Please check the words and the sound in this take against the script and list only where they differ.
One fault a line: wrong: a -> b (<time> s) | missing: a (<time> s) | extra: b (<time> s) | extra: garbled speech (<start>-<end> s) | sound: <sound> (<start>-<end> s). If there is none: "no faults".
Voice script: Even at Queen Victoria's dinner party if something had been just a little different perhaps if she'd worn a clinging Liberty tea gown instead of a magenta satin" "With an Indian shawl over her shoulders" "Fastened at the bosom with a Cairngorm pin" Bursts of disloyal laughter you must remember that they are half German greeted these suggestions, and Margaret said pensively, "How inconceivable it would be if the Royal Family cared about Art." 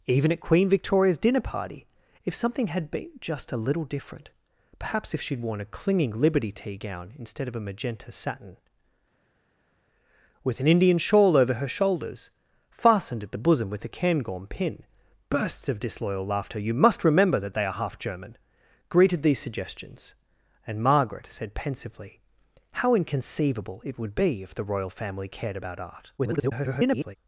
extra: garbled speech (26.2-27.2 s)